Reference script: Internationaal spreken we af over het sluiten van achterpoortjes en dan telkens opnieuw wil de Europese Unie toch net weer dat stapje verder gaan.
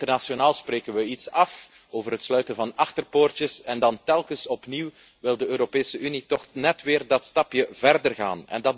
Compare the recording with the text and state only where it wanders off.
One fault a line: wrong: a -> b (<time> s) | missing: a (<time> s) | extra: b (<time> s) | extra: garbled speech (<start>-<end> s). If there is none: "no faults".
extra: iets (1.1 s)